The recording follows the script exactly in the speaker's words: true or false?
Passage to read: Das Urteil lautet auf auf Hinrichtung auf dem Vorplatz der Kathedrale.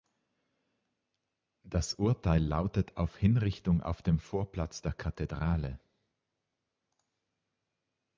false